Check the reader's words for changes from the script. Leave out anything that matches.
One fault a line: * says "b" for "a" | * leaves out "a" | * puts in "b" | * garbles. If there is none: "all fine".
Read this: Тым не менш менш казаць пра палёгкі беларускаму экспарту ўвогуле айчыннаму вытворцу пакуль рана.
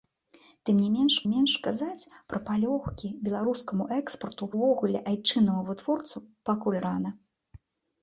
all fine